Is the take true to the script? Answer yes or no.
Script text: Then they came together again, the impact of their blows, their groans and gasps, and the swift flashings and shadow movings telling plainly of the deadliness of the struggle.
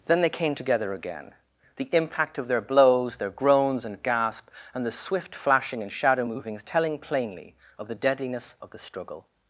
no